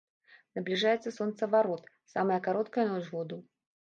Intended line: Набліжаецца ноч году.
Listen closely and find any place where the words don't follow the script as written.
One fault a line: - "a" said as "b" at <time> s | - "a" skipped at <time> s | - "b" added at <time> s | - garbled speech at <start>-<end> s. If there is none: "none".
- "сонцаварот самая кароткая" added at 1.1 s